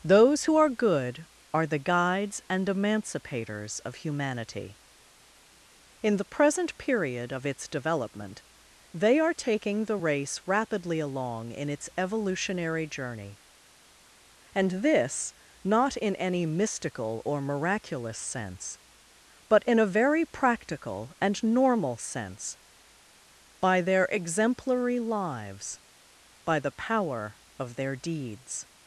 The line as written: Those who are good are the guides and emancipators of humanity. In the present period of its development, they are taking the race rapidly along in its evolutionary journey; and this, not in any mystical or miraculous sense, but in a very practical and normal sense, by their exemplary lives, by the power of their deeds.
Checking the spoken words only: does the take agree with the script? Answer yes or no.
yes